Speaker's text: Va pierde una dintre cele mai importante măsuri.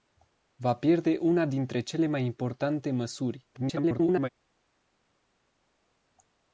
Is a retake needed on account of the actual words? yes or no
yes